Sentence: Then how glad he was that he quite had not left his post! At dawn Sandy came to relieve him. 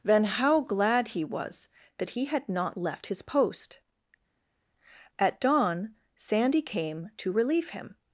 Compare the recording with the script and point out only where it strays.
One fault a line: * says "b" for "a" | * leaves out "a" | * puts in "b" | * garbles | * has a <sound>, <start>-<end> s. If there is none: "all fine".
* leaves out "quite"